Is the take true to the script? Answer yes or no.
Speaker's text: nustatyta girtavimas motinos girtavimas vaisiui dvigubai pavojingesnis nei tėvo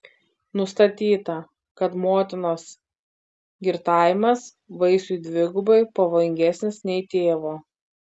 no